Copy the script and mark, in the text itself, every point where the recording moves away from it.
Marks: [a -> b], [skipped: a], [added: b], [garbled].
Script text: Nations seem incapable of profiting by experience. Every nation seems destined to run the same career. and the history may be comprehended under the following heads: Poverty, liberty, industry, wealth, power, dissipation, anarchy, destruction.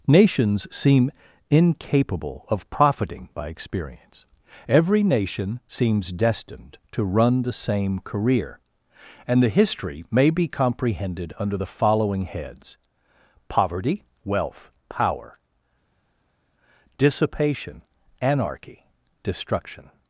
Nations seem incapable of profiting by experience. Every nation seems destined to run the same career. and the history may be comprehended under the following heads: Poverty, [skipped: liberty, industry,] wealth, power, dissipation, anarchy, destruction.